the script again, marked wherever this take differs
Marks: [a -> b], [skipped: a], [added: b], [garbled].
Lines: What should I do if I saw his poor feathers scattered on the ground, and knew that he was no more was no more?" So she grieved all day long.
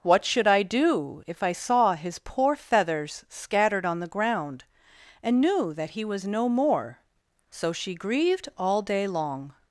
What should I do if I saw his poor feathers scattered on the ground, and knew that he was no more [skipped: was no more?"] So she grieved all day long.